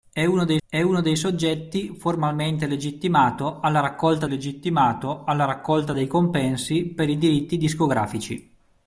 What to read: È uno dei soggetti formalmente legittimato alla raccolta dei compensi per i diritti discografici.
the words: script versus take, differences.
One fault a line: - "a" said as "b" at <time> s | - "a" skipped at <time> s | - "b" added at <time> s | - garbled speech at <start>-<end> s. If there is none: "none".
- "è uno dei" added at 0.7 s
- "legittimato alla raccolta" added at 4.2 s